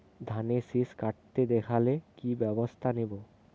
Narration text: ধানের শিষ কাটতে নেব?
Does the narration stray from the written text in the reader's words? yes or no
yes